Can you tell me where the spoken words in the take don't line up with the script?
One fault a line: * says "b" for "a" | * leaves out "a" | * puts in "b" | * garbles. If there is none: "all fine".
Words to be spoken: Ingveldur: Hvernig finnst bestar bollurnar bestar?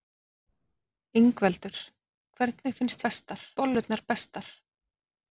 all fine